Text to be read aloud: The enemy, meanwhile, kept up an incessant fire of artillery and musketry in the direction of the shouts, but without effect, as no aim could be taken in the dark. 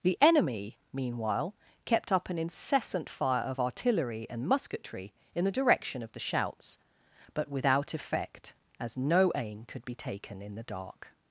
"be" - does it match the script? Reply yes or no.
yes